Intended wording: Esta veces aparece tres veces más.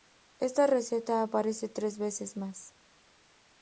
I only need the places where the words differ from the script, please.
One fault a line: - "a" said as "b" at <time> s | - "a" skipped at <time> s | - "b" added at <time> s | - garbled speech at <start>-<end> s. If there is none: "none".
- "veces" said as "receta" at 0.7 s